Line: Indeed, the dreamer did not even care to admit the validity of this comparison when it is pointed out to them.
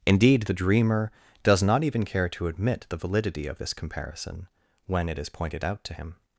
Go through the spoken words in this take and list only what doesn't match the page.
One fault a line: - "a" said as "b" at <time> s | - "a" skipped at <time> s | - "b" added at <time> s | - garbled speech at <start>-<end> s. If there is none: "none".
- "did" said as "does" at 1.4 s
- "them" said as "him" at 5.9 s